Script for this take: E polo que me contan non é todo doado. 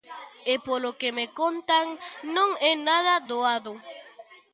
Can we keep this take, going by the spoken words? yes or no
no